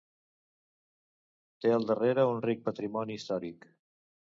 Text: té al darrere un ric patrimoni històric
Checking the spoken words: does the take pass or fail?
pass